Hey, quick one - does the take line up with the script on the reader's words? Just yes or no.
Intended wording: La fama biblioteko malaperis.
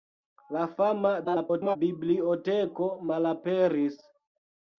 no